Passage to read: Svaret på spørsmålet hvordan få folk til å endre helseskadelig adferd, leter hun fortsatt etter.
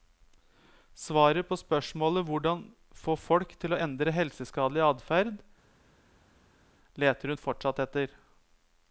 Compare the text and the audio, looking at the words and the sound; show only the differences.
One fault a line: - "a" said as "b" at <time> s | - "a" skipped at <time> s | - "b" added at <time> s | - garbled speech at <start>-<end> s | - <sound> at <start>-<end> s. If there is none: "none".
none